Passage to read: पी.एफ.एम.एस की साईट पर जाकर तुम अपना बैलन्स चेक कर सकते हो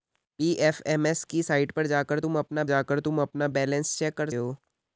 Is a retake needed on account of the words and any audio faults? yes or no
yes